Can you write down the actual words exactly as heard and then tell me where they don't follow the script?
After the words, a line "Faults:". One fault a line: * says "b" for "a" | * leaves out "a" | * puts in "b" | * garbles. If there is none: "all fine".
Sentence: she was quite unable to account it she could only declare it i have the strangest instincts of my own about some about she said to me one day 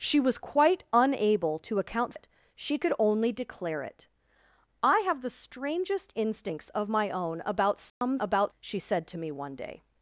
she was quite unable to account it she could only declare it i have the strangest instincts of my own about some about she said to me one day
Faults:
all fine